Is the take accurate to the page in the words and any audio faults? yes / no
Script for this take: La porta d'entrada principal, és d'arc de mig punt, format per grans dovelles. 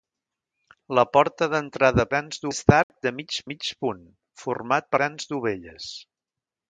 no